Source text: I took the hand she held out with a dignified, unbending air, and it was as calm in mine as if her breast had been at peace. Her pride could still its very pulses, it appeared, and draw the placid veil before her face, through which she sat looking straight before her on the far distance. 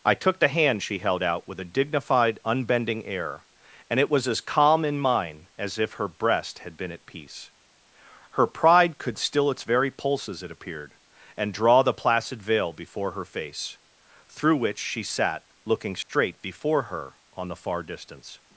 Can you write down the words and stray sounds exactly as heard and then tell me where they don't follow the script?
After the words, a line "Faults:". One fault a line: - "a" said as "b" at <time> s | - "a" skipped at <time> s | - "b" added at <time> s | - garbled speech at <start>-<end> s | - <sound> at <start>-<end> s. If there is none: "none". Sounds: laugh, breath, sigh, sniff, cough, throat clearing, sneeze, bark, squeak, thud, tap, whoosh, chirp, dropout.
I took the hand she held out with a dignified, unbending air, and it was as calm in mine as if her breast had been at peace. Her pride could still its very pulses, it appeared, and draw the placid veil before her face, through which she sat looking straight before her on the far distance.
Faults:
- dropout at 16.0-16.1 s